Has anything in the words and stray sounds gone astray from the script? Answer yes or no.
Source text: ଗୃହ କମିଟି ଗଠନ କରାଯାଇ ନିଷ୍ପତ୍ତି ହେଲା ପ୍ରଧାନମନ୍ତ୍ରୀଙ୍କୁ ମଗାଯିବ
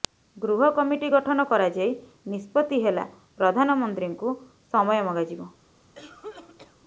yes